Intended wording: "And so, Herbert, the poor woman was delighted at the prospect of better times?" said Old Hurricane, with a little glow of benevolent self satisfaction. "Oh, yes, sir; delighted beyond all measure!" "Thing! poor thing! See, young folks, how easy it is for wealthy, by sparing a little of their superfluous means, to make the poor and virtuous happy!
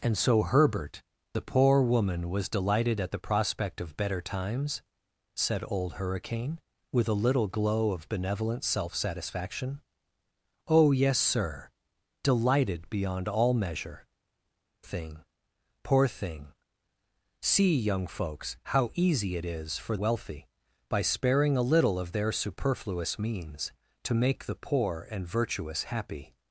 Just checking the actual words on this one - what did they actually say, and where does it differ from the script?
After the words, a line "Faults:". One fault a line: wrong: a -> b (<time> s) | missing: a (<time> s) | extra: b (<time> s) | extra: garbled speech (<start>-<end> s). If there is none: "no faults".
"And so, Herbert, the poor woman was delighted at the prospect of better times?" said Old Hurricane, with a little glow of benevolent self satisfaction. "Oh, yes, sir; delighted beyond all measure!" "Thing! poor thing! See, young folks, how easy it is for wealthy, by sparing a little of their superfluous means, to make the poor and virtuous happy!
Faults:
no faults